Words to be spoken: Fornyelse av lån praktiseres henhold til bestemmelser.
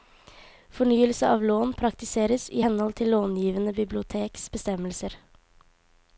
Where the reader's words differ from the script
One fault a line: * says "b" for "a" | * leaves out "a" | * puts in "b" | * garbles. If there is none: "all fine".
* puts in "i"
* puts in "långivende biblioteks"